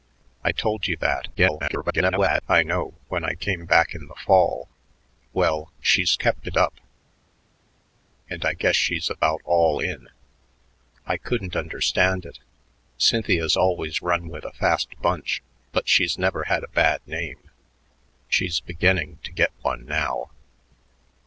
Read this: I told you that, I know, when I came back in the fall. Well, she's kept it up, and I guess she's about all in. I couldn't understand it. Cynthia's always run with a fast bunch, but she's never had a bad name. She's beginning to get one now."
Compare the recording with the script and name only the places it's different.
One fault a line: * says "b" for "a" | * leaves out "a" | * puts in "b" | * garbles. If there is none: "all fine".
* garbles